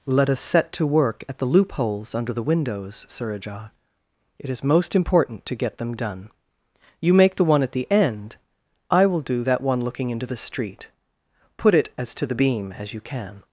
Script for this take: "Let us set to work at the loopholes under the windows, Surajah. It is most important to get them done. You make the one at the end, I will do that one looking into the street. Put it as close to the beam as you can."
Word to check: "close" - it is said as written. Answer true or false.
false